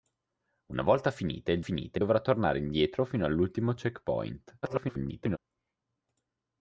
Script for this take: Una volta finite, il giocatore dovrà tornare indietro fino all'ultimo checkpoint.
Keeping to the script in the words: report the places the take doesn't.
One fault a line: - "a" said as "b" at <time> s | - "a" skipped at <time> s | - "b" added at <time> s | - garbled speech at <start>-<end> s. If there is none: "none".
- "giocatore" said as "finite" at 1.6 s
- garbled speech at 4.6-5.4 s